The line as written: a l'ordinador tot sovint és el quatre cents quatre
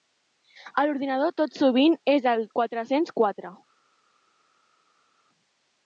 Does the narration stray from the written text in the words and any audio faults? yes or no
no